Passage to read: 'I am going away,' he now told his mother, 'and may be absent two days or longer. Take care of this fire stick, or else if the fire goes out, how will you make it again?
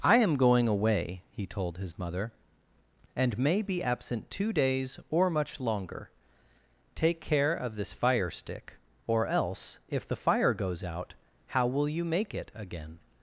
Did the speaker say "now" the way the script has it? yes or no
no